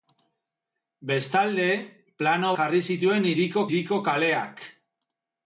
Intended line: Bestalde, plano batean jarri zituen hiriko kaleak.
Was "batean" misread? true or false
true